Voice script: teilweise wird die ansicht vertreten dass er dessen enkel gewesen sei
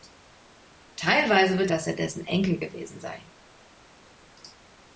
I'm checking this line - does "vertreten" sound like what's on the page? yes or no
no